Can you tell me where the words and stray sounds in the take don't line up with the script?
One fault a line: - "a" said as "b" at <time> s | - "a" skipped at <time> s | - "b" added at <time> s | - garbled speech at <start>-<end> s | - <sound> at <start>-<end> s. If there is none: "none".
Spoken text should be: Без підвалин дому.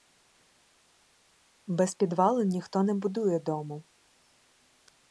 - "ніхто не будує" added at 2.5 s